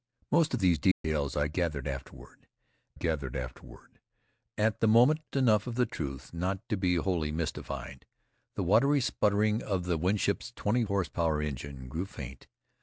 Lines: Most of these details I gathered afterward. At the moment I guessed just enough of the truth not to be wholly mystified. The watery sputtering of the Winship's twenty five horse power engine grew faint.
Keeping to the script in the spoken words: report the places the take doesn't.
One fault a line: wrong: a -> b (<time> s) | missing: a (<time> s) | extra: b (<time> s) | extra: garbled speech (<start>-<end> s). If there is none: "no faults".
extra: gathered afterward (2.9 s)
missing: I guessed just (5.2 s)
missing: five (10.8 s)